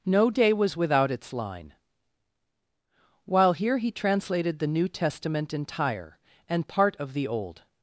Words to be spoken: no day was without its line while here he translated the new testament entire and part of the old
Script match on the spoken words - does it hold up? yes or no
yes